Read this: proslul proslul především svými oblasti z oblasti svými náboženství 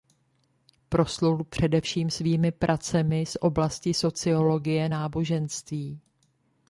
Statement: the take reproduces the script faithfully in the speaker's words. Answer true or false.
false